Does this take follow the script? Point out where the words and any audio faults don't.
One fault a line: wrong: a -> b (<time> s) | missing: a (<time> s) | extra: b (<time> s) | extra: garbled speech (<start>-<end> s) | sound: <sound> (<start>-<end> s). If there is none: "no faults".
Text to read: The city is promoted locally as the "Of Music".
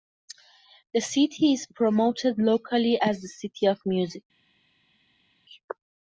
extra: City (3.3 s)